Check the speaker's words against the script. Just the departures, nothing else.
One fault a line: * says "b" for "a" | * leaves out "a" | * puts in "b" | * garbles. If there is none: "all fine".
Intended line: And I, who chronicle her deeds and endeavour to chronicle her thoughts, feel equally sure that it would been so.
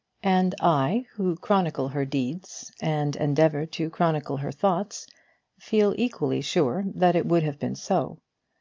* puts in "have"